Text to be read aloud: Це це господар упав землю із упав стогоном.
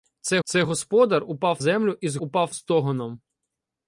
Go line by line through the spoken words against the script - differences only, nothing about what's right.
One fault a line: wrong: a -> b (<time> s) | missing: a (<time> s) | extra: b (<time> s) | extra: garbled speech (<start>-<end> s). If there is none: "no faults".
no faults